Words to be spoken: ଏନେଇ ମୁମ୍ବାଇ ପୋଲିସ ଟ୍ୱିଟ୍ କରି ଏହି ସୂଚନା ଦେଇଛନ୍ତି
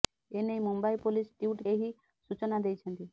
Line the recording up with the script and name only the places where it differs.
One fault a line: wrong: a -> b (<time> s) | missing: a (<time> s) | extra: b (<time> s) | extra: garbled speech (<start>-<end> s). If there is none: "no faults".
missing: କରି (1.7 s)